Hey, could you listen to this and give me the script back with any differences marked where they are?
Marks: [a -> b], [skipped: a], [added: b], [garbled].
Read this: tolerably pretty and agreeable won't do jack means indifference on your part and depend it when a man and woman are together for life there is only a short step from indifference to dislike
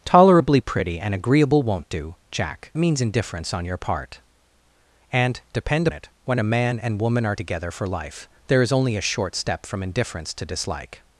tolerably pretty and agreeable won't do jack means indifference on your part and depend it when a man and woman are together for life there is only a short step from indifference to dislike